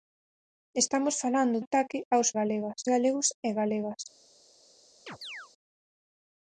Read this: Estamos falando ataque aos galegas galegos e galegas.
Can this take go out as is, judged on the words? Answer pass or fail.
pass